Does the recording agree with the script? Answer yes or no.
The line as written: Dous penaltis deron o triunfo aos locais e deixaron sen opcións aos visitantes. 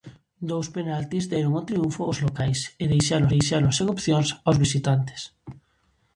no